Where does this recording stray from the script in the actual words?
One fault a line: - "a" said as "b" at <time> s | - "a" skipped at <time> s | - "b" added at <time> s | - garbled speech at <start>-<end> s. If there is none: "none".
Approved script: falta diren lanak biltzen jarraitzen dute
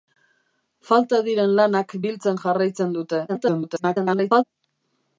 - garbled speech at 3.3-4.4 s